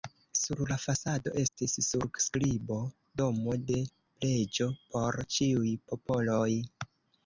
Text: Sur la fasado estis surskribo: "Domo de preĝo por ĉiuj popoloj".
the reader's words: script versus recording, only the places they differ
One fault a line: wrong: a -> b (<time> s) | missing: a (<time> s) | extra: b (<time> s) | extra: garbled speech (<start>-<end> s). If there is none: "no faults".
no faults